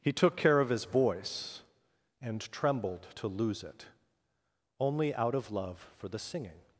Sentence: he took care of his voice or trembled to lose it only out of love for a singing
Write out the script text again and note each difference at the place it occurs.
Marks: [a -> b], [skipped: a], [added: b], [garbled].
he took care of his voice [or -> and] trembled to lose it only out of love for [a -> the] singing